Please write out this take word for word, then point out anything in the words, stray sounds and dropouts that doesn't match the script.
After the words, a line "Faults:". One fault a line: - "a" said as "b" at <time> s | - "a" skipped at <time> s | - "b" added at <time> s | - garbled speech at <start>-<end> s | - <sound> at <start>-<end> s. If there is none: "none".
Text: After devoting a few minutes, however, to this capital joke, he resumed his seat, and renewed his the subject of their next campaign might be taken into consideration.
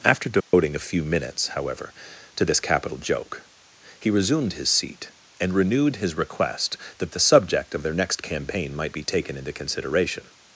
After devoting a few minutes, however, to this capital joke, he resumed his seat, and renewed his request that the subject of their next campaign might be taken into consideration.
Faults:
- dropout at 0.4-0.5 s
- "request that" added at 6.2 s